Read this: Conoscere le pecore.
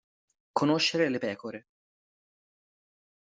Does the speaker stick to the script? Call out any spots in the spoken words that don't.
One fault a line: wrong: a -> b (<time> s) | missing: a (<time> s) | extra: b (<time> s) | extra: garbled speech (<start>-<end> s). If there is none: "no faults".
no faults